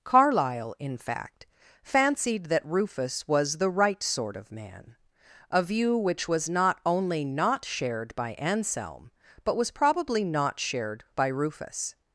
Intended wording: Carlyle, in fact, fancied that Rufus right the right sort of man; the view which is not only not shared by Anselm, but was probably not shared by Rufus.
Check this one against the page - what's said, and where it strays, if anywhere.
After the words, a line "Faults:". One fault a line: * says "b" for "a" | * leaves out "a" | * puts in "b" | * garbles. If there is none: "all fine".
Carlyle, in fact, fancied that Rufus was the right sort of man; a view which was not only not shared by Anselm, but was probably not shared by Rufus.
Faults:
* says "was" for "right"
* says "a" for "the"
* says "was" for "is"